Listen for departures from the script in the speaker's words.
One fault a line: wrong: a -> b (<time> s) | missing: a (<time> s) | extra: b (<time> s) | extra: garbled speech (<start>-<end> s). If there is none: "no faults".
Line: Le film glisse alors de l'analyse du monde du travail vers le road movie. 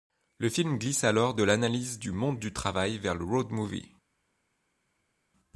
no faults